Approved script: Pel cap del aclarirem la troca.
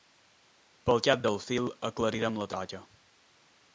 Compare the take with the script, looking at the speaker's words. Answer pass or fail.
fail